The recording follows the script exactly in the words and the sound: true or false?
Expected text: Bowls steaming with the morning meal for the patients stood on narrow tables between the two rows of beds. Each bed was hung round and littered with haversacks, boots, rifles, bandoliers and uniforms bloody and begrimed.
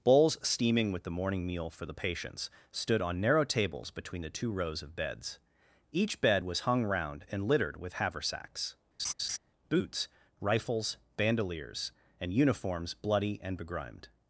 false